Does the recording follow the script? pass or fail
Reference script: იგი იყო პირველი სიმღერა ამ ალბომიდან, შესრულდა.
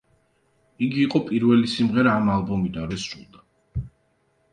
pass